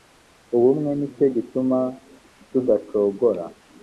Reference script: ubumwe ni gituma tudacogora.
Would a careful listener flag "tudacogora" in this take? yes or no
no